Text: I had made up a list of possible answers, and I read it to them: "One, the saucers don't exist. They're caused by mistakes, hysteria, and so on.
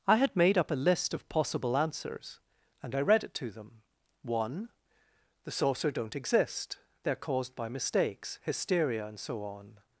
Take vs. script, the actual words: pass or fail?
fail